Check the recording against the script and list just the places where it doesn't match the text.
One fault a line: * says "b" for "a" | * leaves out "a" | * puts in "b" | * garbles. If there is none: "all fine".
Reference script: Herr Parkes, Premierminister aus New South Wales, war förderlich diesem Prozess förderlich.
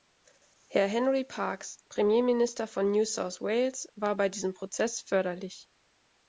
* puts in "Henry"
* says "von" for "aus"
* says "bei" for "förderlich"